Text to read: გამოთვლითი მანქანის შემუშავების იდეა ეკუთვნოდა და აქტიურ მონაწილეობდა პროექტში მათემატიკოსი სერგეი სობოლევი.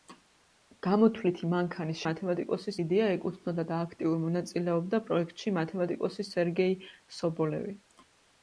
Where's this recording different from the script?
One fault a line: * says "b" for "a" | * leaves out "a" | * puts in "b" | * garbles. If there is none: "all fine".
* says "მათემატიკოსი" for "შემუშავების"